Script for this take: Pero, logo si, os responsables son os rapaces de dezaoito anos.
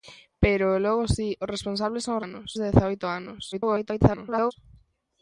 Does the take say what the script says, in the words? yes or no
no